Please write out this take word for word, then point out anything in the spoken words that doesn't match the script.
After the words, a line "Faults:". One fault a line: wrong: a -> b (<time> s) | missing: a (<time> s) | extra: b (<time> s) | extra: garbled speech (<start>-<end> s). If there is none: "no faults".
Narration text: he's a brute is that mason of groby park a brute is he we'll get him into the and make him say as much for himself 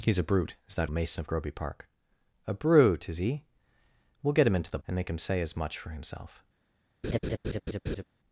he's a brute is that mason of groby park a brute is he we'll get him into the and make him say as much for himself
Faults:
no faults